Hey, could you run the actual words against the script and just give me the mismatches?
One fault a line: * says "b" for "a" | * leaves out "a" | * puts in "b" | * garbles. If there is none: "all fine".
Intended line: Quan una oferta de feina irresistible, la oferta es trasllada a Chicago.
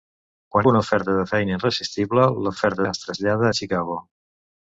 all fine